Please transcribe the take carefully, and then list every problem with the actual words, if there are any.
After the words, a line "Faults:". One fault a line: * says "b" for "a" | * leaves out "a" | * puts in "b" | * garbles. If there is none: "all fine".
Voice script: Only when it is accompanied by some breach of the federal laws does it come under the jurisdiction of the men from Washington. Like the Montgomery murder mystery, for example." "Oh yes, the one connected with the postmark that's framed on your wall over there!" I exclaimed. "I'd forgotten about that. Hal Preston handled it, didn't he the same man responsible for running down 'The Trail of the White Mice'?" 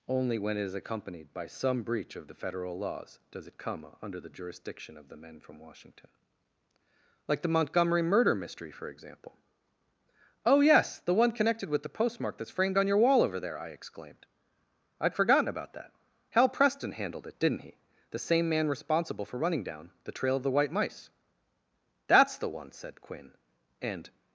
Only when it is accompanied by some breach of the federal laws does it come under the jurisdiction of the men from Washington. Like the Montgomery murder mystery, for example." "Oh yes, the one connected with the postmark that's framed on your wall over there!" I exclaimed. "I'd forgotten about that. Hal Preston handled it, didn't he the same man responsible for running down 'The Trail of the White Mice'?" "That's the one," said Quinn, and
Faults:
* puts in "That's the one said Quinn and"